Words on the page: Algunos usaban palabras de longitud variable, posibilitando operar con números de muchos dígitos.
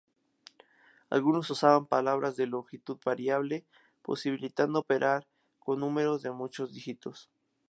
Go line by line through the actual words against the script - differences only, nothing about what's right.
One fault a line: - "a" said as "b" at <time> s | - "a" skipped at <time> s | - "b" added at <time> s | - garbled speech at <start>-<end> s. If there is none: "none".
none